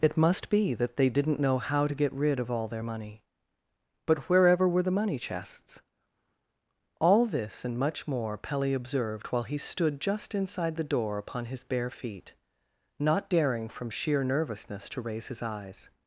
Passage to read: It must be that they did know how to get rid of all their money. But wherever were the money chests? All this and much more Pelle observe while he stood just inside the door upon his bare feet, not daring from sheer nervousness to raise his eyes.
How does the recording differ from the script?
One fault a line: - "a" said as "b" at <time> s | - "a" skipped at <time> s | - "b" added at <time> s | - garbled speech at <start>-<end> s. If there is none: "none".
- "did" said as "didn't" at 1.1 s
- "observe" said as "observed" at 8.7 s